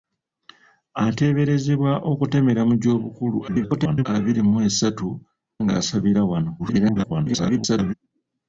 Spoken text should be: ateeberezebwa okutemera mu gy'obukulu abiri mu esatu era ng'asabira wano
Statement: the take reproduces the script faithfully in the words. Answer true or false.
false